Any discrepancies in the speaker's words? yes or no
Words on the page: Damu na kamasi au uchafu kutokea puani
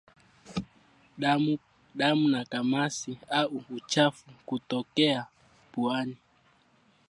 no